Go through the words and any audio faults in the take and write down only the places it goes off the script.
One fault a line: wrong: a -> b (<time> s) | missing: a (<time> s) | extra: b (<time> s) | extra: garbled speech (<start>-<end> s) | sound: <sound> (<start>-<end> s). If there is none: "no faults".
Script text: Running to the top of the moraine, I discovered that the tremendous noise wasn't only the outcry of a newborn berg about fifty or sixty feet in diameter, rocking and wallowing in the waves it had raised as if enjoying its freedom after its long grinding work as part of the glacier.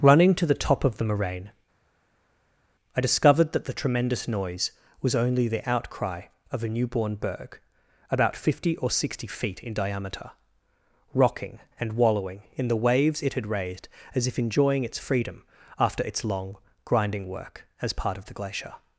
wrong: wasn't -> was (5.0 s)